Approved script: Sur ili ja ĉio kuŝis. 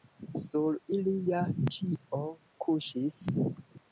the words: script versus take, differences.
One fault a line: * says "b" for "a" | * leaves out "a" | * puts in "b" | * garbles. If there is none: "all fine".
all fine